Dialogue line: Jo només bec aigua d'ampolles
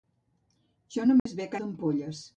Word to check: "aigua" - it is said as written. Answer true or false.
false